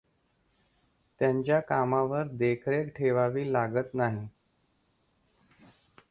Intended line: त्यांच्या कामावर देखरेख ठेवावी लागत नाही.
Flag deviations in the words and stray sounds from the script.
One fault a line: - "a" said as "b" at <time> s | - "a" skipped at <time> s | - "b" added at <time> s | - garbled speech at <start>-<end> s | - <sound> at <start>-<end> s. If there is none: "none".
none